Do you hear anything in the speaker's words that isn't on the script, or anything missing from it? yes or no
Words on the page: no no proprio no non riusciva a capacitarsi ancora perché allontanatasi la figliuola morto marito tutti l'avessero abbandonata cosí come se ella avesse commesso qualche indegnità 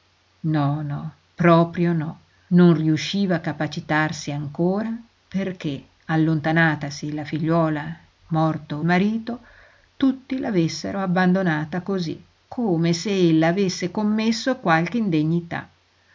no